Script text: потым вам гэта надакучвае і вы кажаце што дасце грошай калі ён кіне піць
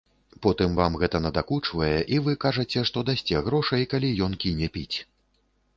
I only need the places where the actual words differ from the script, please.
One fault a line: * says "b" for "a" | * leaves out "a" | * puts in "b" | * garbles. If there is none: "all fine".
all fine